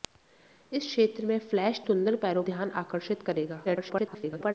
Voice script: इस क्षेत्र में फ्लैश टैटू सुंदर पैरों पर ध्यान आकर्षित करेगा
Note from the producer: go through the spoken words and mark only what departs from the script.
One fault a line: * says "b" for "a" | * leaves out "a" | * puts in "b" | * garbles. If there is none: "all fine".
* leaves out "टैटू"
* leaves out "पर"
* garbles